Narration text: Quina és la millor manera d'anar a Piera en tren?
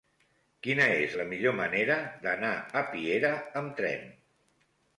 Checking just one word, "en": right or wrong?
wrong